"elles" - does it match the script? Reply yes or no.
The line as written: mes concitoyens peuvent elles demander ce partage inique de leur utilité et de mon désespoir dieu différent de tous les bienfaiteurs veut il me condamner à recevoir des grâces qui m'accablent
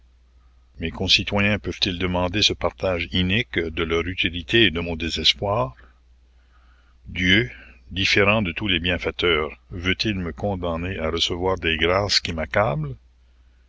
no